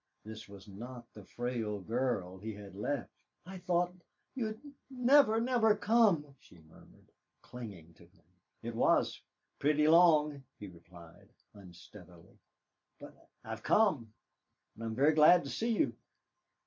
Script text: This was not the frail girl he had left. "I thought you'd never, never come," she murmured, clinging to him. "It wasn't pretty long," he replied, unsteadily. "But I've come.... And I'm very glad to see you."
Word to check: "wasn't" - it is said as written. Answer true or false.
false